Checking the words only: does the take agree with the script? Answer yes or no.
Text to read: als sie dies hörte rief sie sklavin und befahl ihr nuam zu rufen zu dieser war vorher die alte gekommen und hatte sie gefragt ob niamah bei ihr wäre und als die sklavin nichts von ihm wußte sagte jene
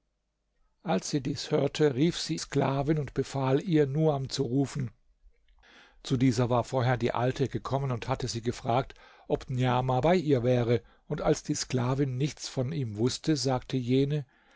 yes